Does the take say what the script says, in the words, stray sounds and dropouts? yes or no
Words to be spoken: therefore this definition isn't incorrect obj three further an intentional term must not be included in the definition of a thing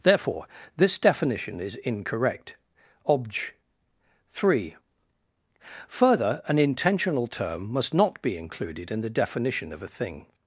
no